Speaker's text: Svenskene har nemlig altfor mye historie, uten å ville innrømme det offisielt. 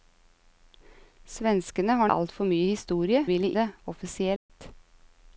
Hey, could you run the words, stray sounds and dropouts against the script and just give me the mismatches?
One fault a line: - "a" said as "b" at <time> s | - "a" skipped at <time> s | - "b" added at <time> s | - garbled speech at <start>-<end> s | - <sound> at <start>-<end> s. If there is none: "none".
- "nemlig" skipped at 2.1 s
- "uten" skipped at 3.2 s
- "innrømme" skipped at 3.5 s
- dropout at 4.4-4.5 s